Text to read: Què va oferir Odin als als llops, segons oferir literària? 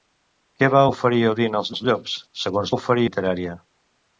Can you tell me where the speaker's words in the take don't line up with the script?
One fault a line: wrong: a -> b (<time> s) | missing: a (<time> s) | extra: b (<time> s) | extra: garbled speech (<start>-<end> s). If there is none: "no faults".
no faults